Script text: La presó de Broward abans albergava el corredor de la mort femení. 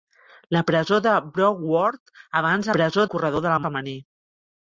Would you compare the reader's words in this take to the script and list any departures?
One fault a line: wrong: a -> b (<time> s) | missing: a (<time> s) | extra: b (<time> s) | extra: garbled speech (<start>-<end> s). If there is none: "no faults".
wrong: albergava -> presó (2.8 s)
missing: mort (3.6 s)